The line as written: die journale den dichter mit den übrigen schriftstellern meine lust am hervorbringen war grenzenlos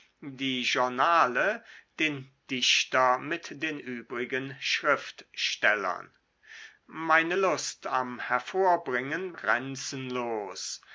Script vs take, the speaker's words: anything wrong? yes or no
yes